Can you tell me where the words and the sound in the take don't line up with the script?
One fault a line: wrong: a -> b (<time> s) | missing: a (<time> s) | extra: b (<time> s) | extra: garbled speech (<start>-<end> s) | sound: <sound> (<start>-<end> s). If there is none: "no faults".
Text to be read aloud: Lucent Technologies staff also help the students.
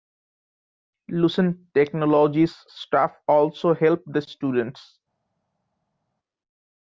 no faults